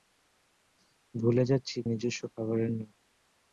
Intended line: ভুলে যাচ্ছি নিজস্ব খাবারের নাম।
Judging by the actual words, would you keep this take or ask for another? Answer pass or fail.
pass